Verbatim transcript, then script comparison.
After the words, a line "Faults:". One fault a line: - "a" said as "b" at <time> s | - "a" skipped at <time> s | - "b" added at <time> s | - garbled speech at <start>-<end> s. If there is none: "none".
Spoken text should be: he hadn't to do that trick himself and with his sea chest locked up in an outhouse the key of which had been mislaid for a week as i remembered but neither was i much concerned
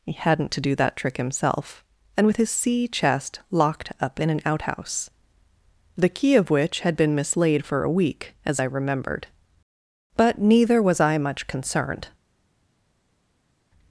he hadn't to do that trick himself and with his sea chest locked up in an outhouse the key of which had been mislaid for a week as i remembered but neither was i much concerned
Faults:
none